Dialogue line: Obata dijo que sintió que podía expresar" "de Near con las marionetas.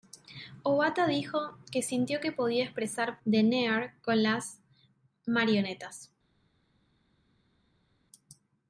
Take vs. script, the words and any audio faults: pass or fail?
pass